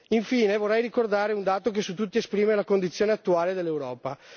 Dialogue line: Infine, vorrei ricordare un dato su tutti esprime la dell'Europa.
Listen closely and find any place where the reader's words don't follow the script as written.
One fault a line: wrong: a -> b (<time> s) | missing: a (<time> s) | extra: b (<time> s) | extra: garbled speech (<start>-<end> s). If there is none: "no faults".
extra: che (1.7 s)
extra: condizione attuale (2.6 s)